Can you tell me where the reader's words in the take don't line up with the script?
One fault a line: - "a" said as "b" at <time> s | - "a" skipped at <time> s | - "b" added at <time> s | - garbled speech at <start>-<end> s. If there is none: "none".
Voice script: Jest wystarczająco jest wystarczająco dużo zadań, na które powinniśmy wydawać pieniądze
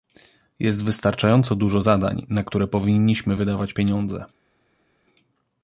- "jest wystarczająco" skipped at 1.6 s